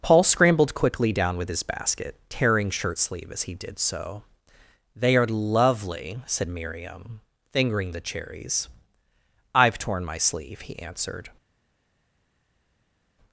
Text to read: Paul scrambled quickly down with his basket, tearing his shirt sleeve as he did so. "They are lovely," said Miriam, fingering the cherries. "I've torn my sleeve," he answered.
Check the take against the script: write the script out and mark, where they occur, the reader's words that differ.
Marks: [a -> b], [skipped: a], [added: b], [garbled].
Paul scrambled quickly down with his basket, tearing [skipped: his] shirt sleeve as he did so. "They are lovely," said Miriam, fingering the cherries. "I've torn my sleeve," he answered.